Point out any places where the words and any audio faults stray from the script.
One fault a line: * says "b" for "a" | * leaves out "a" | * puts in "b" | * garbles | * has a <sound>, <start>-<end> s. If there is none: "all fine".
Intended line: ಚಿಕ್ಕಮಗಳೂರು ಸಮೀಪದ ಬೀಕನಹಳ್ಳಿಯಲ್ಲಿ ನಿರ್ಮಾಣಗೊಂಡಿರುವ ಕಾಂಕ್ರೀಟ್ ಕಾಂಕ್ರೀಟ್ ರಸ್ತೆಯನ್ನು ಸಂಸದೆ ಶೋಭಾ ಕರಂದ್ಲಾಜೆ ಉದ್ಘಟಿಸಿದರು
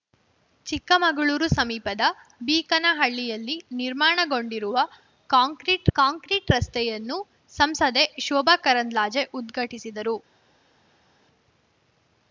all fine